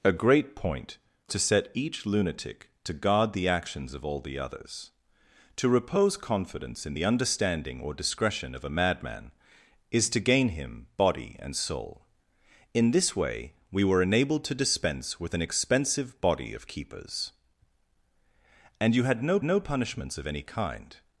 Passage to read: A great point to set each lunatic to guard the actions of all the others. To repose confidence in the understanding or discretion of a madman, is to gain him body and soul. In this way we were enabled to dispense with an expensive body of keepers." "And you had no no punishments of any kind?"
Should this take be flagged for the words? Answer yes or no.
no